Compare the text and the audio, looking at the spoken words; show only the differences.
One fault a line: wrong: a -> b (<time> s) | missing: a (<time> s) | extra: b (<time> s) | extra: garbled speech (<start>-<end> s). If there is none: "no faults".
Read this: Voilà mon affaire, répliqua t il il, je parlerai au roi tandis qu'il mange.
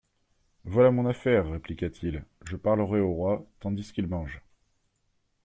missing: il (2.2 s)